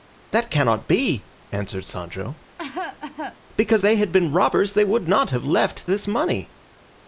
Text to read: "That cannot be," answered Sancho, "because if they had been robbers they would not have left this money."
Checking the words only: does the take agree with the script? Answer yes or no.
no